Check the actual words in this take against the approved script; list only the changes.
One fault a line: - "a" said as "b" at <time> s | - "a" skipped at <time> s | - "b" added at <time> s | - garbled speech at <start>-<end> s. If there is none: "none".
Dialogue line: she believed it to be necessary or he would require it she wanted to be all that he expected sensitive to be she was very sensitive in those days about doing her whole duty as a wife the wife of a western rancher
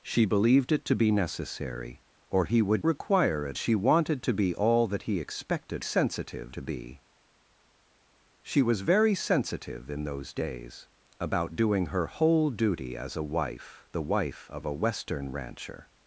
none